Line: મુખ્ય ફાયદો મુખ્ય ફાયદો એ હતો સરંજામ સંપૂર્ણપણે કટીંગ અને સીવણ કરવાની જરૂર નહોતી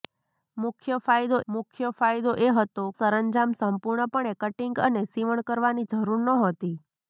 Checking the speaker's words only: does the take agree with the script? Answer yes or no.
yes